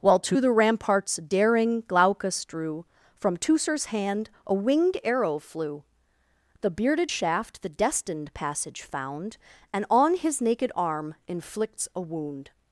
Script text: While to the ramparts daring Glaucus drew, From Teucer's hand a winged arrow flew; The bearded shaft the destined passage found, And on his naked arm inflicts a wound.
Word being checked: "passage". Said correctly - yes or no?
yes